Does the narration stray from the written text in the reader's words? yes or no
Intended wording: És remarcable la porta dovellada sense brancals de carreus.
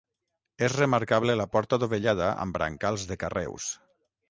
yes